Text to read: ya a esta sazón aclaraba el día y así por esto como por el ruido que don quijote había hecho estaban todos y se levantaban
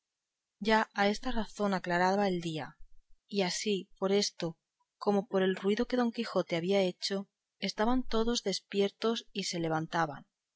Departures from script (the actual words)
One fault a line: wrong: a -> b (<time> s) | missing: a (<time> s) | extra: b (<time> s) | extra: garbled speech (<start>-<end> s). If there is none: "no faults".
extra: despiertos (8.4 s)